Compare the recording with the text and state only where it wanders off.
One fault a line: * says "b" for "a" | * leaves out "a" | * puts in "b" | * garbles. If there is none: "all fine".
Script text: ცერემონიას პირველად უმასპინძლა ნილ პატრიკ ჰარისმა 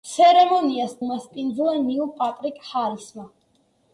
* leaves out "პირველად"